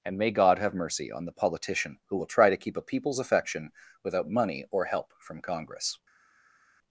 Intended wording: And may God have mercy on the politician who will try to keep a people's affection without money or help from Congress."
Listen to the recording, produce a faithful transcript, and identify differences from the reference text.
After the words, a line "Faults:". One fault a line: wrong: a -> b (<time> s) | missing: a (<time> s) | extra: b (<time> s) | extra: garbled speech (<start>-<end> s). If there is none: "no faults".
And may God have mercy on the politician who will try to keep a people's affection without money or help from Congress."
Faults:
no faults